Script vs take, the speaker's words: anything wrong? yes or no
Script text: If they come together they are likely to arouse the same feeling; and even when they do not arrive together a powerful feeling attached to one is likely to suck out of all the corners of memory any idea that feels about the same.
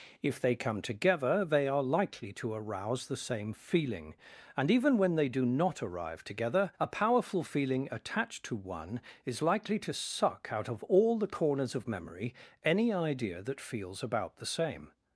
no